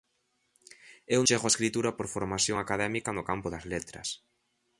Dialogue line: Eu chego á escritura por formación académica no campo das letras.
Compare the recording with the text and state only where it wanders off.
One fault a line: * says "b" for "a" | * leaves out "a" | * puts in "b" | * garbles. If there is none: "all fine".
all fine